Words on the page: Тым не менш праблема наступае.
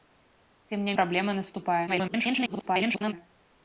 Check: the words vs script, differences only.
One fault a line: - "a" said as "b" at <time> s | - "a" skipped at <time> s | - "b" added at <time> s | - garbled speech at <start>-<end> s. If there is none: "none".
- "менш" skipped at 0.9 s
- garbled speech at 1.9-3.1 s